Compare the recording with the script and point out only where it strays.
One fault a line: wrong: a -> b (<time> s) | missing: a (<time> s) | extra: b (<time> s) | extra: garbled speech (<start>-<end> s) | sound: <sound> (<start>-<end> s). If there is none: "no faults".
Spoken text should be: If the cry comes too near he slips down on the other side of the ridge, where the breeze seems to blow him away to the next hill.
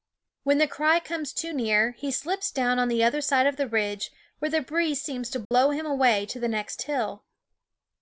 wrong: If -> When (0.4 s)
sound: dropout (5.4-5.5 s)